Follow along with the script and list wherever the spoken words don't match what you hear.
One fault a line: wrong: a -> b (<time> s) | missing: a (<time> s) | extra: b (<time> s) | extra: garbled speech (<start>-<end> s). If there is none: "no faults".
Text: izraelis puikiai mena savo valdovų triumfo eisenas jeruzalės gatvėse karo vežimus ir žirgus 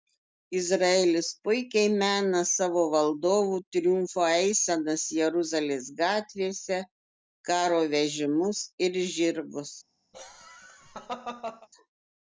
no faults